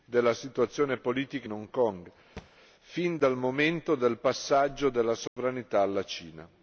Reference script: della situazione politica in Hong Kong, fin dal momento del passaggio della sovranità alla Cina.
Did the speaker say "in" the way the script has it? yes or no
yes